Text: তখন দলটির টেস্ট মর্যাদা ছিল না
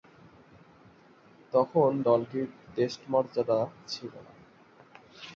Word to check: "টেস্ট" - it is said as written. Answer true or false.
true